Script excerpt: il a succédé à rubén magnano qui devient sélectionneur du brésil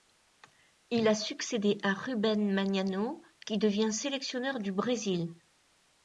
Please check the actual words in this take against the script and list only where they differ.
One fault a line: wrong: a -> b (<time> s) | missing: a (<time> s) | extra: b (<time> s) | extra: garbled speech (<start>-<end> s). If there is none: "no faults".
no faults